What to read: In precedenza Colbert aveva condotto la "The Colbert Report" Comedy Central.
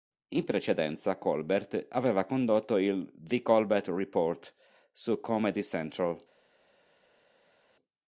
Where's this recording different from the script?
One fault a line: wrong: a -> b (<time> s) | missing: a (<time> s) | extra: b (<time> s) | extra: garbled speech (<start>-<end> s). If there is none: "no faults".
wrong: la -> il (2.8 s)
extra: su (4.9 s)